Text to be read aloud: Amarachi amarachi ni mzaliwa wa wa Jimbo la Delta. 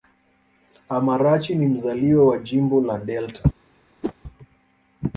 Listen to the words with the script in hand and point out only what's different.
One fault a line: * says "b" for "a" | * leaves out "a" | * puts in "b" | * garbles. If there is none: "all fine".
* leaves out "amarachi"
* leaves out "wa"